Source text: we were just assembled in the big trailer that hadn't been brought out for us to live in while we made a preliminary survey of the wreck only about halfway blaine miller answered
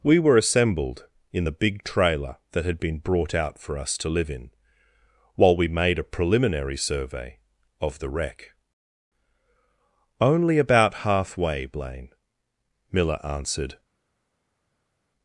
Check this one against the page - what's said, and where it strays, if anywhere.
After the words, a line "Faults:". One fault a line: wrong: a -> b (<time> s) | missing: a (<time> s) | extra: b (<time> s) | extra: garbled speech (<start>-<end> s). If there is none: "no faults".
we were assembled in the big trailer that had been brought out for us to live in while we made a preliminary survey of the wreck only about halfway blaine miller answered
Faults:
missing: just (0.4 s)
wrong: hadn't -> had (2.6 s)